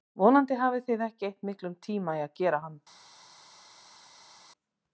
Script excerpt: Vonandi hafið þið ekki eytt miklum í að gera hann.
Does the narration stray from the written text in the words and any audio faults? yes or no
yes